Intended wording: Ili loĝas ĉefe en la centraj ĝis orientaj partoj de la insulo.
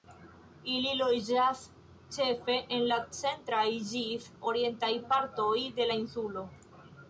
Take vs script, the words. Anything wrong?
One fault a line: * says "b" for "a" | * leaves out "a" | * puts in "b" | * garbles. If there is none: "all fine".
all fine